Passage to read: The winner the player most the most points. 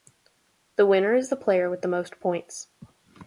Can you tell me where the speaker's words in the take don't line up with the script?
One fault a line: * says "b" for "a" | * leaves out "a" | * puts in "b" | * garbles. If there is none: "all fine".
* puts in "is"
* says "with" for "most"